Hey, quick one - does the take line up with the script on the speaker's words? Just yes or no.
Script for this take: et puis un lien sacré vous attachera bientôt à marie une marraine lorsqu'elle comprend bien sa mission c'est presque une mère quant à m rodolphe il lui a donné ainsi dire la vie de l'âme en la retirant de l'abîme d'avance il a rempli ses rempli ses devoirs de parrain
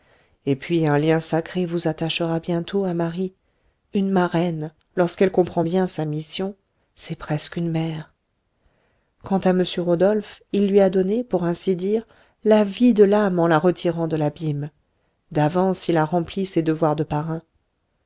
no